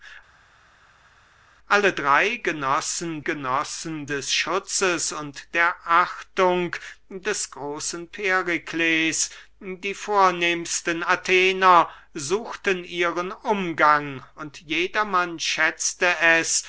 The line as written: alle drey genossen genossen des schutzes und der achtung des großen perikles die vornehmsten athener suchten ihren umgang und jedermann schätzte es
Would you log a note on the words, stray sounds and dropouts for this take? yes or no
no